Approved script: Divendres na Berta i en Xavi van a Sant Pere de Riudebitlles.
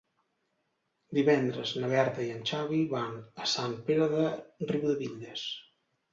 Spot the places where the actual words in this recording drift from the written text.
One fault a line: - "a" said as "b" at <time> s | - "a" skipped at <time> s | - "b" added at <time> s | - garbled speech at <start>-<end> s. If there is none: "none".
none